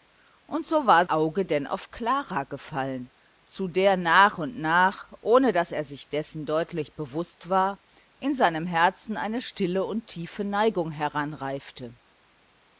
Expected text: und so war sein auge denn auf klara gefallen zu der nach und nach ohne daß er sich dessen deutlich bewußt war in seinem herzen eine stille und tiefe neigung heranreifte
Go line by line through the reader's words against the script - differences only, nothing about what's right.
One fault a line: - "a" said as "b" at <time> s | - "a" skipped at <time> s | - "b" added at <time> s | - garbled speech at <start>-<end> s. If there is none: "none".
- "sein" skipped at 1.1 s